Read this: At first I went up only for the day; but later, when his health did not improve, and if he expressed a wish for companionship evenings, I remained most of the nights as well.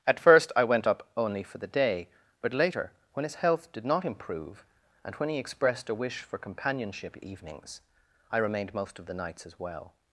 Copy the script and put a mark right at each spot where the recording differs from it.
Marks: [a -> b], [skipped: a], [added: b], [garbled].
At first I went up only for the day; but later, when his health did not improve, and [if -> when] he expressed a wish for companionship evenings, I remained most of the nights as well.